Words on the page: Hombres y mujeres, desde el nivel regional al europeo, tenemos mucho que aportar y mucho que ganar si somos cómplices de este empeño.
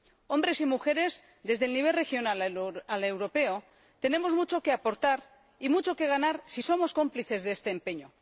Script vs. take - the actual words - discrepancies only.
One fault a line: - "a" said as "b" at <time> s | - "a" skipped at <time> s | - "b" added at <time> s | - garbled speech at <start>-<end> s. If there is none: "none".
none